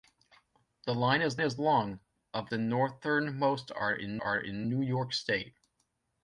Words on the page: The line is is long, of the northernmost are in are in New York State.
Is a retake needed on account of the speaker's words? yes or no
no